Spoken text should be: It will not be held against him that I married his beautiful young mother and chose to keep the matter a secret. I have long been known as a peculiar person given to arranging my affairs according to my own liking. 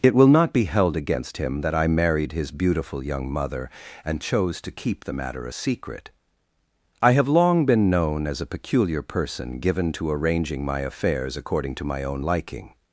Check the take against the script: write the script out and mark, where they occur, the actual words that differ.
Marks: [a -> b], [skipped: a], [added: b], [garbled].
It will not be held against him that I married his beautiful young mother and chose to keep the matter a secret. I have long been known as a peculiar person given to arranging my affairs according to my own liking.